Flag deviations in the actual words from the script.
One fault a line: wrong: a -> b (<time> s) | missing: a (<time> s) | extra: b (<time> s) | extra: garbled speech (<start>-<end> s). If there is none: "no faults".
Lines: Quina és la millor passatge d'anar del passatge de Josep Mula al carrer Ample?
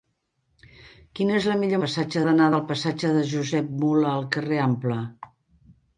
no faults